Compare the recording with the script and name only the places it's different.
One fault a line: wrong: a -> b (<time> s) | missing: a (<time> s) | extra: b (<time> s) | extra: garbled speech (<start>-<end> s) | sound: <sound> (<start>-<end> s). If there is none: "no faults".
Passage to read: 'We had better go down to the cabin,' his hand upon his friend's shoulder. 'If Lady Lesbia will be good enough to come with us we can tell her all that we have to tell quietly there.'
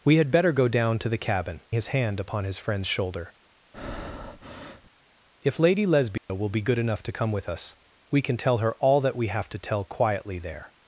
sound: breath (3.7-4.9 s)
sound: dropout (6.2-6.3 s)